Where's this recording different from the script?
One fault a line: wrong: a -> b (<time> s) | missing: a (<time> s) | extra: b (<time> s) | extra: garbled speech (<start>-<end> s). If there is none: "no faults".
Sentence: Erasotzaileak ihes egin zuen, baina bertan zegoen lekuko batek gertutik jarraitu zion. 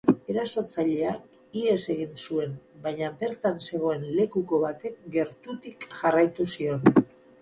no faults